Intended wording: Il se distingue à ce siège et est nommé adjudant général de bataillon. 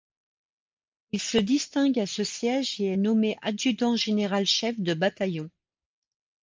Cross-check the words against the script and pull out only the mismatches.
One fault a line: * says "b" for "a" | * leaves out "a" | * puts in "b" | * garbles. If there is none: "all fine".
* puts in "chef"